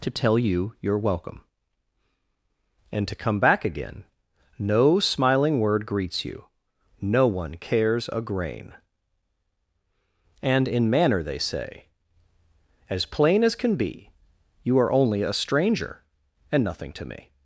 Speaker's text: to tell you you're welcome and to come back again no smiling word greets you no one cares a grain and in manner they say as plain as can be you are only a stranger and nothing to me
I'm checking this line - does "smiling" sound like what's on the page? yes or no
yes